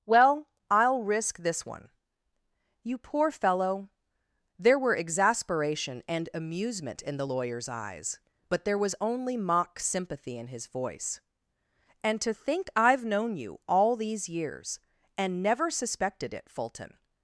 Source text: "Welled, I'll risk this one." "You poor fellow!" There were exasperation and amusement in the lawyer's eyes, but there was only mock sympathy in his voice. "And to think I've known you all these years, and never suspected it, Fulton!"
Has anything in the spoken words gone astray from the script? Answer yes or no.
yes